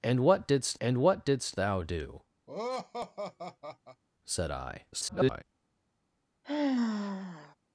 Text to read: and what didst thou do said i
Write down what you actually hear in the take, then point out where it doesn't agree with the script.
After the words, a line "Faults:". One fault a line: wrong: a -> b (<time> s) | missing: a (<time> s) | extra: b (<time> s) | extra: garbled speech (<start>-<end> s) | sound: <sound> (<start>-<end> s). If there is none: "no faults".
and what didst and what didst thou do said i [garbled]
Faults:
extra: and what didst (0.8 s)
sound: laugh (2.5-4.0 s)
extra: garbled speech (4.9-5.4 s)
sound: sigh (6.4-7.6 s)